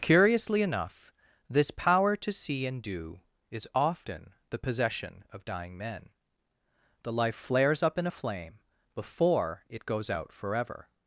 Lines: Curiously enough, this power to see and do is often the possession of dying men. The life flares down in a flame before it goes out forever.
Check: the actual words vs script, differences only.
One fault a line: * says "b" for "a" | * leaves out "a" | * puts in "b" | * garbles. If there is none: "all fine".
* says "up" for "down"